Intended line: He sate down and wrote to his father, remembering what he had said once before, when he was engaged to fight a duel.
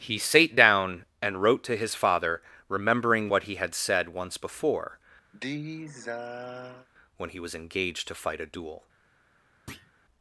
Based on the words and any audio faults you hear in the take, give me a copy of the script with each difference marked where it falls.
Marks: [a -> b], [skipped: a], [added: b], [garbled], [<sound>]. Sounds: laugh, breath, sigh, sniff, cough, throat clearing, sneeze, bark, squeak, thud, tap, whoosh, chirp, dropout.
He sate down and wrote to his father, remembering what he had said once before, [sigh] when he was engaged to fight a duel. [thud]